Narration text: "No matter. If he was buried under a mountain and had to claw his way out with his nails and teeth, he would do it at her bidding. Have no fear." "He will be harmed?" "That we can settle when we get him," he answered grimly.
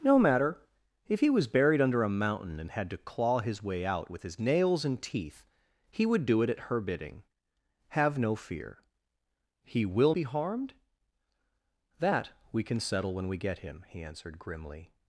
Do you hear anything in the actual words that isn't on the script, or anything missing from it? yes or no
no